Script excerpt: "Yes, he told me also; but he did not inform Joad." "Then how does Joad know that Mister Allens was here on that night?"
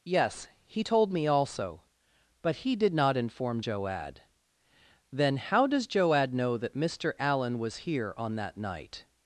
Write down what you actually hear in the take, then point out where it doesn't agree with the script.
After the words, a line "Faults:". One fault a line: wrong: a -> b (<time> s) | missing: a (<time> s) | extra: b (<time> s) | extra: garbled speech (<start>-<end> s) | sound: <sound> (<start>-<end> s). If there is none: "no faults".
"Yes, he told me also; but he did not inform Joad." "Then how does Joad know that Mister Allen was here on that night?"
Faults:
wrong: Allens -> Allen (7.2 s)